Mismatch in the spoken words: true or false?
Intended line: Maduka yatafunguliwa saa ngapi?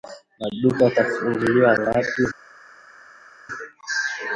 true